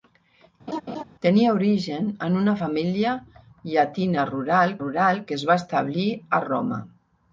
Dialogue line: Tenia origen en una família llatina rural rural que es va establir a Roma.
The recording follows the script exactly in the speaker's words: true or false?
true